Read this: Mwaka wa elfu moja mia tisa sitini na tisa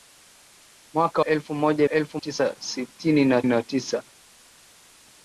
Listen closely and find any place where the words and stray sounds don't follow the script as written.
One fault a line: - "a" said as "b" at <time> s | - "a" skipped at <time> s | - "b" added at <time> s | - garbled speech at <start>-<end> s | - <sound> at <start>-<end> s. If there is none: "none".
- "wa" skipped at 1.2 s
- "mia" said as "elfu" at 1.9 s
- "na" added at 3.4 s